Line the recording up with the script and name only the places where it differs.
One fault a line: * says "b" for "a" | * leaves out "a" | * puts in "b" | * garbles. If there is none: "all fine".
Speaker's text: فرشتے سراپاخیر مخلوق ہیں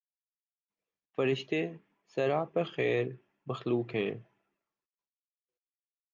all fine